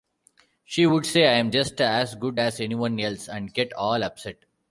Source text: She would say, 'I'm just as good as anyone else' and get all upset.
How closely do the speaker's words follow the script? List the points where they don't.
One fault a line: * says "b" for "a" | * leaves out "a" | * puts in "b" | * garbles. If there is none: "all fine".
all fine